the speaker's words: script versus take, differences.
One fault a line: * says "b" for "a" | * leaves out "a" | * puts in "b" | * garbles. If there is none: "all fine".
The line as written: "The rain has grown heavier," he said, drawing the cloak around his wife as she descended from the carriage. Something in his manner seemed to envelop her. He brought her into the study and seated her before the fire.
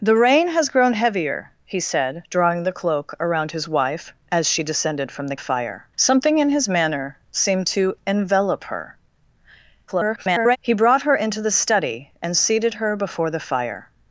* says "fire" for "carriage"
* garbles